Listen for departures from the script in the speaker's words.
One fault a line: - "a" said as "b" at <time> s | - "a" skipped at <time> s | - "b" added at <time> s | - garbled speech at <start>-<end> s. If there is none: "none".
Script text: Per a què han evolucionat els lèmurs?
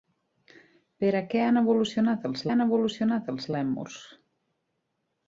- "han evolucionat els" added at 2.5 s